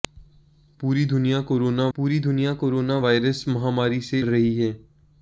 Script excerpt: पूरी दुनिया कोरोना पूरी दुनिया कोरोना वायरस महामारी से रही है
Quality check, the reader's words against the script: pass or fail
pass